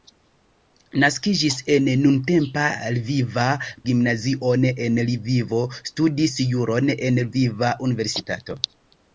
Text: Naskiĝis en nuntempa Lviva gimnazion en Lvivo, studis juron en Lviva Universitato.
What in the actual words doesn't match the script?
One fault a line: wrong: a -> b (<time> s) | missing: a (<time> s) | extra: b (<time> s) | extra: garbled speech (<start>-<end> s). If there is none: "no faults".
no faults